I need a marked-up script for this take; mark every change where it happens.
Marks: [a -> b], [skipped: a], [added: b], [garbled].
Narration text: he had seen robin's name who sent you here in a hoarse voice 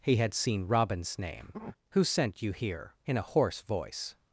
he had seen robin's name who sent you here in a hoarse voice